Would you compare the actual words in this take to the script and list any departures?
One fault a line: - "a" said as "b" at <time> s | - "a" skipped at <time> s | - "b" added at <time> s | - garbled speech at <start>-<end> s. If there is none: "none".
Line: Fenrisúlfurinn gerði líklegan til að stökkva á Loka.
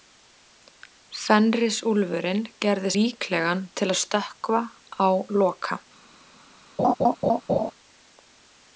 none